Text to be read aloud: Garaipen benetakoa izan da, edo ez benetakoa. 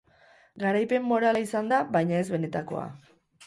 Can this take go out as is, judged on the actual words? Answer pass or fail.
fail